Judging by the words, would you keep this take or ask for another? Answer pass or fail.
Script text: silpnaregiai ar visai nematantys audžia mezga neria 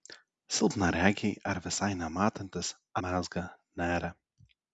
fail